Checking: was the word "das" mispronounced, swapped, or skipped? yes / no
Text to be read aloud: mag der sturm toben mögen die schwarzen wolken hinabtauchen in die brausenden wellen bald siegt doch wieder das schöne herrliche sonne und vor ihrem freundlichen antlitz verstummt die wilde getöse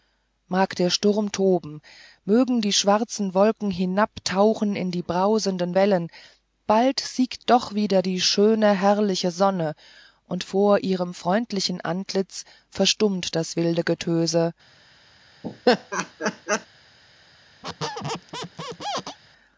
yes